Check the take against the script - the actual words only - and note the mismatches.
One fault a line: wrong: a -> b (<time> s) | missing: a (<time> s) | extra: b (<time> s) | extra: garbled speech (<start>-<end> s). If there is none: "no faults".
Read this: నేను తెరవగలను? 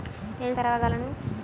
no faults